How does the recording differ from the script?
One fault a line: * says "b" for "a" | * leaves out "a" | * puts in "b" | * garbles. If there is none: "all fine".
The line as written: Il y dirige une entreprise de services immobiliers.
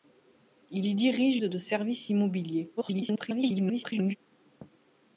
* leaves out "une entreprise"
* garbles